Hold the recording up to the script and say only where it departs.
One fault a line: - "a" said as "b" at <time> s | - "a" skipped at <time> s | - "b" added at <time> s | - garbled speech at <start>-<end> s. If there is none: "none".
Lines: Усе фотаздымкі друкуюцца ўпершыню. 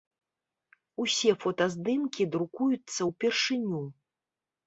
none